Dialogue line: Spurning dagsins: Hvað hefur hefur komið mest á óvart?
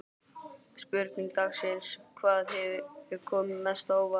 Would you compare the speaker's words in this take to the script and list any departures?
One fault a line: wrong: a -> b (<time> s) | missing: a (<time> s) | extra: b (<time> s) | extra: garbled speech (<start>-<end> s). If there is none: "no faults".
missing: hefur (3.2 s)